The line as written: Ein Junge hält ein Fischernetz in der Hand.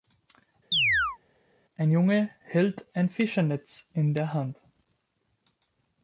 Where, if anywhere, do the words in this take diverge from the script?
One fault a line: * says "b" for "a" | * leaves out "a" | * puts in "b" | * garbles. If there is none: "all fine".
all fine